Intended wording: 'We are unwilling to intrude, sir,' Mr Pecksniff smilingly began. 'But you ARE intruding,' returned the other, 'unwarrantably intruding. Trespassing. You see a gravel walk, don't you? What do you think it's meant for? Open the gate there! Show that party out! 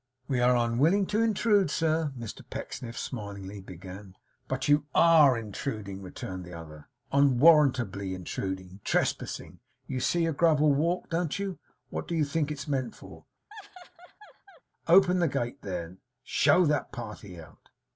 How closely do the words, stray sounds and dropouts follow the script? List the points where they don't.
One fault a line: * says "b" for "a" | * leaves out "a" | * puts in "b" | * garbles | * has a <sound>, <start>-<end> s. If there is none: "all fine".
* has a laugh, 13.5-14.6 s